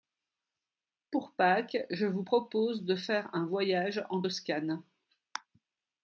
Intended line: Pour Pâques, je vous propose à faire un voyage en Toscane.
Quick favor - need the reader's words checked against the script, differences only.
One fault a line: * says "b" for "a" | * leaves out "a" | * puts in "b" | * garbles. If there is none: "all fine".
* says "de" for "à"